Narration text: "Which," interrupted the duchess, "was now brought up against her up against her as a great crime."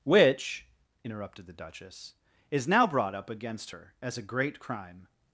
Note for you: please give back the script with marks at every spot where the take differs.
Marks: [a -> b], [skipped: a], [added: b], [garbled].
"Which," interrupted the duchess, ["was -> is] now brought up against her [skipped: up against her] as a great crime."